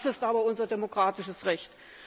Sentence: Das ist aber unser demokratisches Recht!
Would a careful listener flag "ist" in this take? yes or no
no